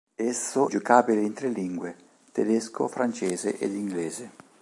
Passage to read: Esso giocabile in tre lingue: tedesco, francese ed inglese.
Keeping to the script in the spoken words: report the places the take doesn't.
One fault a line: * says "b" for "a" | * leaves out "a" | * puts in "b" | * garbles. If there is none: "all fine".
all fine